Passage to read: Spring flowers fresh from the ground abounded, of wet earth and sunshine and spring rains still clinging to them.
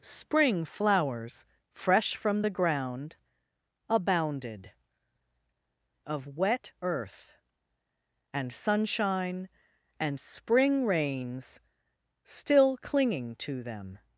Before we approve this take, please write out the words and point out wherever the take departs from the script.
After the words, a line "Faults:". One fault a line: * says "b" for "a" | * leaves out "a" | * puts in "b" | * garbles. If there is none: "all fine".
Spring flowers fresh from the ground abounded, of wet earth and sunshine and spring rains still clinging to them.
Faults:
all fine